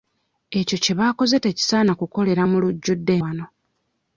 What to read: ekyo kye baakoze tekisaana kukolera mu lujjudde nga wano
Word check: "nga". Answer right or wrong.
wrong